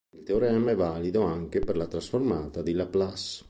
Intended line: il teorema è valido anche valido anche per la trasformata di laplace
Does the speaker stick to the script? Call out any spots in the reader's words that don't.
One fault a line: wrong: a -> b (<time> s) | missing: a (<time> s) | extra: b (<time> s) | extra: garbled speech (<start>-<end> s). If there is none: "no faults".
missing: valido anche (1.6 s)